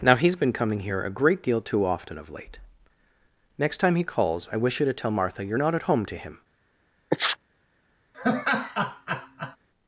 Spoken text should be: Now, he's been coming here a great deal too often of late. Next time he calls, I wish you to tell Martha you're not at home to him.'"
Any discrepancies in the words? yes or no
no